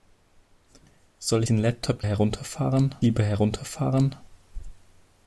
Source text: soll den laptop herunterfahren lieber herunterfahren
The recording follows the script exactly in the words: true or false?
true